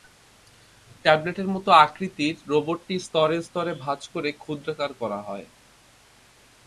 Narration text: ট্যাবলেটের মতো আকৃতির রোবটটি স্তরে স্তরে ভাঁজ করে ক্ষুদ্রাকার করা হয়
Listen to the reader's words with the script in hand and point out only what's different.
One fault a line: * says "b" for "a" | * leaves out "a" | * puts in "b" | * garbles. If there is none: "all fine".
all fine